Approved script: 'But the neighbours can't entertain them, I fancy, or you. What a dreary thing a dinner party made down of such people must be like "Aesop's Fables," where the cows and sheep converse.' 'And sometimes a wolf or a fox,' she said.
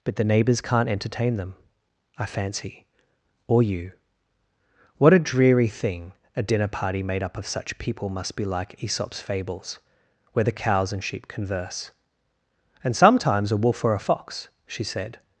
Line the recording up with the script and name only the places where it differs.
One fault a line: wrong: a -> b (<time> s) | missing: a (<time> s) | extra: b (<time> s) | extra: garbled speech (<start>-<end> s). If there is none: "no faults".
wrong: down -> up (7.2 s)